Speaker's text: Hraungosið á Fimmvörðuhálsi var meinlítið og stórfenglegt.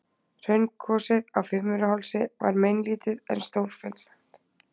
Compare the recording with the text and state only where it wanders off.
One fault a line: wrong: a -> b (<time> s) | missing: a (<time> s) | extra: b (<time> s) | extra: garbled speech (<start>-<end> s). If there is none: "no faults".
wrong: og -> en (3.4 s)